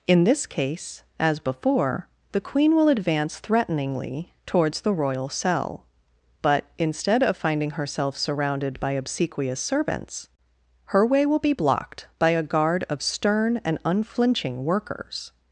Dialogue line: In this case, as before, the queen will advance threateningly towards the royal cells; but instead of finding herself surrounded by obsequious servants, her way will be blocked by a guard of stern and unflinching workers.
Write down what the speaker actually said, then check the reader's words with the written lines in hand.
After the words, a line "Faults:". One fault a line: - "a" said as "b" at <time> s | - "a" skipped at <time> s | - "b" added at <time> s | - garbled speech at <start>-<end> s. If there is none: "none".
In this case, as before, the queen will advance threateningly towards the royal cell; but instead of finding herself surrounded by obsequious servants, her way will be blocked by a guard of stern and unflinching workers.
Faults:
- "cells" said as "cell" at 5.3 s